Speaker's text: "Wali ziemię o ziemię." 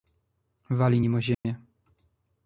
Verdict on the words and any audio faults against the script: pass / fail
fail